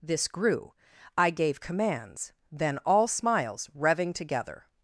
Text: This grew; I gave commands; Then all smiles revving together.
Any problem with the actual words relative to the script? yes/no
no